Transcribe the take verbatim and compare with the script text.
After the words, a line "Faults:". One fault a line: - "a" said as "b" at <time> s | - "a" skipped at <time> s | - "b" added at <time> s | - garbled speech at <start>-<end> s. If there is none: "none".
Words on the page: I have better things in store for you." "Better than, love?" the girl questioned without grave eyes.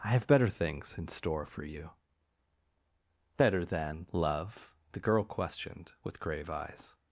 I have better things in store for you." "Better than, love?" the girl questioned with grave eyes.
Faults:
- "without" said as "with" at 6.0 s